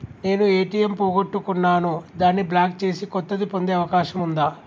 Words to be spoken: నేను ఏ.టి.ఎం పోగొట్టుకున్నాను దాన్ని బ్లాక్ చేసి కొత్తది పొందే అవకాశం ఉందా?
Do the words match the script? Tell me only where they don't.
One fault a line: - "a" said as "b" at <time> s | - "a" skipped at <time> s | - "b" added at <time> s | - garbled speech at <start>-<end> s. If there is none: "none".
none